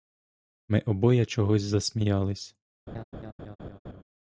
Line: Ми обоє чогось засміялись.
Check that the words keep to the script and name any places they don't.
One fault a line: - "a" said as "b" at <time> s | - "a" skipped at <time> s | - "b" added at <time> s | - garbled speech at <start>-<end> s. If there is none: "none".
none